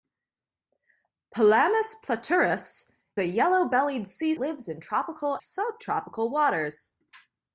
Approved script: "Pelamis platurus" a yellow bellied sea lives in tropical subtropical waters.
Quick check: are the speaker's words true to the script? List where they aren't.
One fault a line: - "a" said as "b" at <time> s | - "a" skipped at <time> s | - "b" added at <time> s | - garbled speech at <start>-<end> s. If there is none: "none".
none